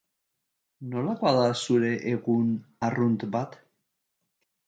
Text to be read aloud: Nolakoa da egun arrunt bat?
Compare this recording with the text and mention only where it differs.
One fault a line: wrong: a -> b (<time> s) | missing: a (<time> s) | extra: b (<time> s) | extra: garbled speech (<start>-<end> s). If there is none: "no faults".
extra: zure (1.6 s)